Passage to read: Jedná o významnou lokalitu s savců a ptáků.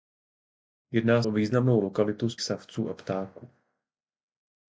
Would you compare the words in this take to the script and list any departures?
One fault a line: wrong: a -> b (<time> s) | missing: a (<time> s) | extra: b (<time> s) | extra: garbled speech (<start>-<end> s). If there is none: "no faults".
no faults